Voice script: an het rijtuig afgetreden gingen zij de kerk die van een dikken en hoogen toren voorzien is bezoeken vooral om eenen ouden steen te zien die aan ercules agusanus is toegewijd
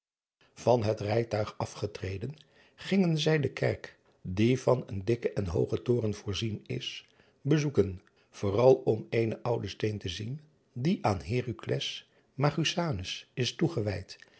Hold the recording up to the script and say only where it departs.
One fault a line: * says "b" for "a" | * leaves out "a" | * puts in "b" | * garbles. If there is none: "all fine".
all fine